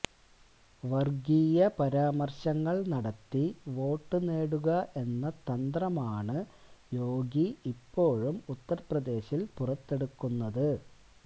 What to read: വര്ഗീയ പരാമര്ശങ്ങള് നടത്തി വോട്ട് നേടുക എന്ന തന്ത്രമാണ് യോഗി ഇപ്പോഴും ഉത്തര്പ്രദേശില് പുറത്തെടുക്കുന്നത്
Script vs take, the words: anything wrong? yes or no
no